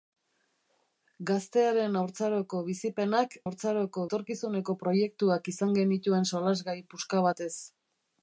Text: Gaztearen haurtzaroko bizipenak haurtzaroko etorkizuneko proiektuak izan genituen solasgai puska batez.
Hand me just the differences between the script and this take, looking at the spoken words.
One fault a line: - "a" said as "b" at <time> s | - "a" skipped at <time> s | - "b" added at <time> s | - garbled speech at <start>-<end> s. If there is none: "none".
none